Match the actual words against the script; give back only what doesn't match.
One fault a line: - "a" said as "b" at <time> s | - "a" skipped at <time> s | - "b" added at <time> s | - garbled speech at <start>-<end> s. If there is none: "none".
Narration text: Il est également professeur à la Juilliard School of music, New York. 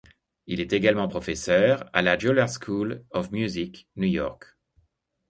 none